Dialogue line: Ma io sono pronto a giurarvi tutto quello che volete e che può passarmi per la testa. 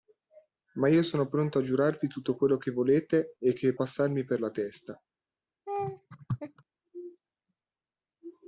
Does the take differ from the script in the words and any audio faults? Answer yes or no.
yes